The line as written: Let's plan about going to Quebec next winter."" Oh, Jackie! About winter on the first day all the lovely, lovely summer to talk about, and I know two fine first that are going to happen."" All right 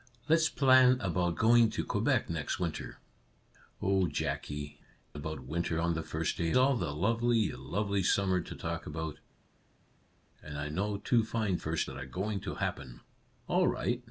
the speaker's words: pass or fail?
pass